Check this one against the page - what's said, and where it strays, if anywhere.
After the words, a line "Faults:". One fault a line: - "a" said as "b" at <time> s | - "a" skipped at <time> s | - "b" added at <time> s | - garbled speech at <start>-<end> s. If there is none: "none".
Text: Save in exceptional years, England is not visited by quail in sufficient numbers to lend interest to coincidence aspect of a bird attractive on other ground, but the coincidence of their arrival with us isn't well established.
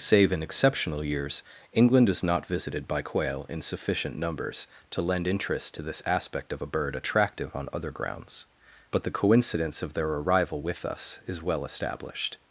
Save in exceptional years, England is not visited by quail in sufficient numbers to lend interest to this aspect of a bird attractive on other grounds, but the coincidence of their arrival with us is well established.
Faults:
- "coincidence" said as "this" at 5.8 s
- "ground" said as "grounds" at 7.9 s
- "isn't" said as "is" at 11.3 s